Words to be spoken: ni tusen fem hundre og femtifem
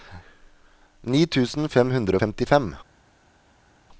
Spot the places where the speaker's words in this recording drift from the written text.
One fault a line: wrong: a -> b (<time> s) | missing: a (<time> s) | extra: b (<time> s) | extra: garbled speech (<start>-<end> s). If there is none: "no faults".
no faults